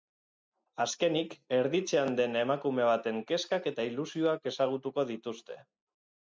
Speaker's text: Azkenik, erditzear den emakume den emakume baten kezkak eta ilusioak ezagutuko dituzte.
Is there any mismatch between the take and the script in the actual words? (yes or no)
yes